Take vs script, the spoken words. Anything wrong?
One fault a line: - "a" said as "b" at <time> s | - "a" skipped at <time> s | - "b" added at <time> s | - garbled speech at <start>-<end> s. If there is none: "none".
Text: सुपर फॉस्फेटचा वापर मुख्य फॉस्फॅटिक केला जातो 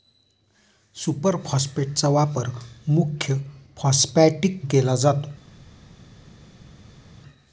none